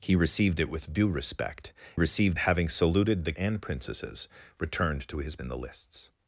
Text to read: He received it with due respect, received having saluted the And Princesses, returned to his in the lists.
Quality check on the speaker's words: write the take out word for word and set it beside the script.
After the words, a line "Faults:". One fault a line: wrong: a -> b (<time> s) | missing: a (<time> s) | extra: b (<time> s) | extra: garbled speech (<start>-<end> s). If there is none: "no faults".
He received it with due respect, received having saluted the And Princesses, returned to his in the lists.
Faults:
no faults